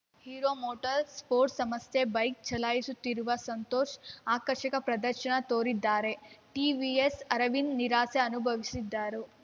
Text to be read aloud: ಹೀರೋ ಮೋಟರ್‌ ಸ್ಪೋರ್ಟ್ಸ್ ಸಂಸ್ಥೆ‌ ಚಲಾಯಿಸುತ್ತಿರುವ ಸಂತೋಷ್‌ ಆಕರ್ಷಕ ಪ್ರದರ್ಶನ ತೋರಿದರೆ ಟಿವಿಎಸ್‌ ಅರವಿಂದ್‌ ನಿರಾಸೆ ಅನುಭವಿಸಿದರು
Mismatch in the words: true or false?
true